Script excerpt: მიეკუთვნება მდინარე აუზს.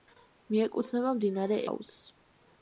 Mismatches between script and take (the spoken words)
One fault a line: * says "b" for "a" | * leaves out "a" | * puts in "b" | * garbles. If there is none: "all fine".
all fine